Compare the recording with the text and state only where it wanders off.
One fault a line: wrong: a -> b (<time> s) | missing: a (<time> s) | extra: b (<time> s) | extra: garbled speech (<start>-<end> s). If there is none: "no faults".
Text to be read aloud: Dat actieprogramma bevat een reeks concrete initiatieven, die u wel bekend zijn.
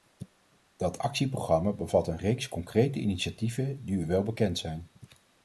no faults